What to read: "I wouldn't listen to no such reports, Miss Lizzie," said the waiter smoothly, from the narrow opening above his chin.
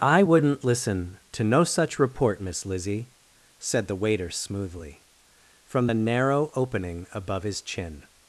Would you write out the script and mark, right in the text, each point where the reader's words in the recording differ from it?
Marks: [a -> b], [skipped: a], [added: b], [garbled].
"I wouldn't listen to no such [reports, -> report] Miss Lizzie," said the waiter smoothly, from the narrow opening above his chin.